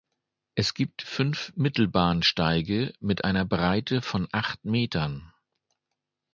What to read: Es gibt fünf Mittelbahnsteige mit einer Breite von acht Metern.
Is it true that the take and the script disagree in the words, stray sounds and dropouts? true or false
false